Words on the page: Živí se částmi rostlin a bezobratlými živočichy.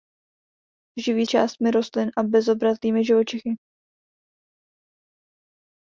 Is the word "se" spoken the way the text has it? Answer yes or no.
no